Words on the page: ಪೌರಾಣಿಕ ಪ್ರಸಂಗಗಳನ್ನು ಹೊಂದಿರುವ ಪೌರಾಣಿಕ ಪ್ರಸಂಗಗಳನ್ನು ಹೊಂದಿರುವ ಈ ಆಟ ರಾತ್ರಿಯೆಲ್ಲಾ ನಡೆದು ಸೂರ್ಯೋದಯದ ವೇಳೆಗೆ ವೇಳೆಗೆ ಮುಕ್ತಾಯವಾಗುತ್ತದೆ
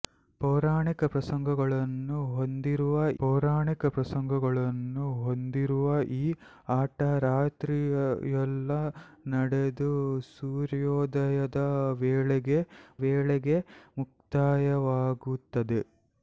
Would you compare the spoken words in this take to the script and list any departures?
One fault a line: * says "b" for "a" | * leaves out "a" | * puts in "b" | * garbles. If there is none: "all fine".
all fine